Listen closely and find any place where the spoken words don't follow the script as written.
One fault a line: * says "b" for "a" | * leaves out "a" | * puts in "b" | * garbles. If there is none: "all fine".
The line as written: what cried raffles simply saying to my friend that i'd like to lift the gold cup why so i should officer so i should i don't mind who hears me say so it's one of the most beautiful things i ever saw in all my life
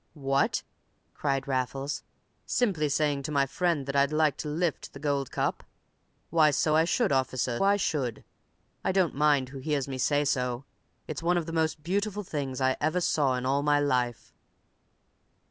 * leaves out "so"